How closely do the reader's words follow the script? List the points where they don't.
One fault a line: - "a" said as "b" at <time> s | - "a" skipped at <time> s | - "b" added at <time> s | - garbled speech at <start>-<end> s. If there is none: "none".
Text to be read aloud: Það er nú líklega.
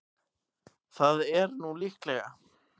none